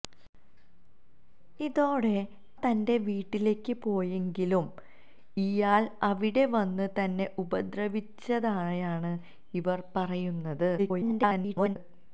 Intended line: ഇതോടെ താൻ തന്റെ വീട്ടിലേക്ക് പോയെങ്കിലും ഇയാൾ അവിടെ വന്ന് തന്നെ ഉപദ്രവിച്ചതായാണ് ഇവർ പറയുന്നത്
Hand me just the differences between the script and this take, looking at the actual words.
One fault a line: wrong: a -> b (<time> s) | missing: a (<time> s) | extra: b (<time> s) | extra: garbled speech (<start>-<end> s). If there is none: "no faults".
missing: താൻ (2.1 s)
extra: garbled speech (10.8-11.8 s)